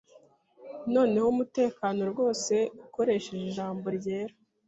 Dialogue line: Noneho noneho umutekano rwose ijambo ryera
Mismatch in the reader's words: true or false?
true